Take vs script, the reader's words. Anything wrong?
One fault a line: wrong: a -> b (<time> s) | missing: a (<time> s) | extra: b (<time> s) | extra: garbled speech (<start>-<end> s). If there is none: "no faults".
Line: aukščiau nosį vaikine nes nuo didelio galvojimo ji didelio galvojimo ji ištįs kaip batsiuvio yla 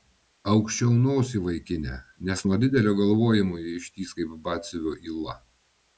missing: didelio galvojimo ji (3.7 s)